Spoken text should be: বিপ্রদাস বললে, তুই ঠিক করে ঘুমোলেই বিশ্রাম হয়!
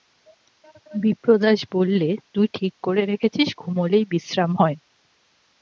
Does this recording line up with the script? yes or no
no